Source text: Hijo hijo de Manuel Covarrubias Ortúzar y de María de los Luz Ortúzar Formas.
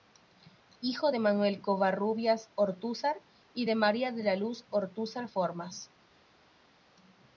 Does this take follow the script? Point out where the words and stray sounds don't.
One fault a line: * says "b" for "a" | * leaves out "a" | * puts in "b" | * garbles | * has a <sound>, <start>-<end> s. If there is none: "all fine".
* leaves out "hijo"
* says "la" for "los"